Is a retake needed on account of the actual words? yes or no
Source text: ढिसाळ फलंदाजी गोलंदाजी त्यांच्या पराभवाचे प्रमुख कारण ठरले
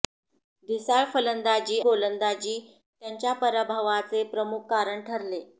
no